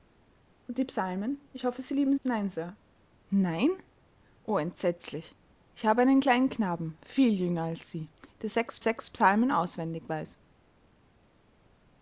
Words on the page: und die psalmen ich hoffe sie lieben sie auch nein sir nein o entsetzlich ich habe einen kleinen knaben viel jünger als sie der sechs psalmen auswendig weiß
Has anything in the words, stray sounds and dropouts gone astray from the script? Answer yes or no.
yes